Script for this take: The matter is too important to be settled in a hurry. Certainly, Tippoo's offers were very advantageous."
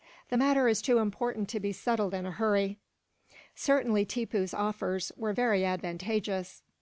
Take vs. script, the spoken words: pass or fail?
pass